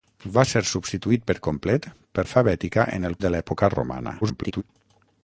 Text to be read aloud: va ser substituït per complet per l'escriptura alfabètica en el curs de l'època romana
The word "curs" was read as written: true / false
false